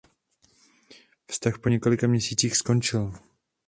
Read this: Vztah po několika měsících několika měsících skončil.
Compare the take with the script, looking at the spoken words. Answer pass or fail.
fail